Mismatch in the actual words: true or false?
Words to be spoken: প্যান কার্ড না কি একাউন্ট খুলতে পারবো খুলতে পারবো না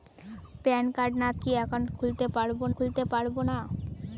false